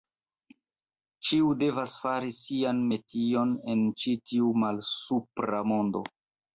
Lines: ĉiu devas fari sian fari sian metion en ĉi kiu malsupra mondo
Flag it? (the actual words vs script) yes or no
yes